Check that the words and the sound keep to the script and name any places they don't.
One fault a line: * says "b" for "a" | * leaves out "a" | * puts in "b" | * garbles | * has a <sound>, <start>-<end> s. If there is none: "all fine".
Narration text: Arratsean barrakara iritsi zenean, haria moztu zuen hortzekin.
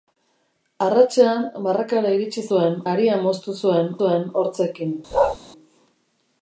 * says "zuen" for "zenean"
* puts in "zuen"
* has a bark, 5.1-5.4 s